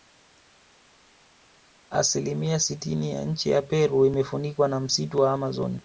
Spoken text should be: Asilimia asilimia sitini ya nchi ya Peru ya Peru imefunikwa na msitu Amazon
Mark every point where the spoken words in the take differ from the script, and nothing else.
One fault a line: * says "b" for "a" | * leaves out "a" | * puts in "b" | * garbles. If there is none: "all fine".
* leaves out "asilimia"
* leaves out "ya Peru"
* puts in "wa"